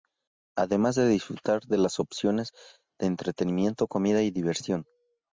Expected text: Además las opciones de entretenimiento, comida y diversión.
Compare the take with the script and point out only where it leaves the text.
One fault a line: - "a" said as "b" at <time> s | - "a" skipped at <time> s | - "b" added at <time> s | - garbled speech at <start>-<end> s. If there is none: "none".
- "de disfrutar de" added at 0.9 s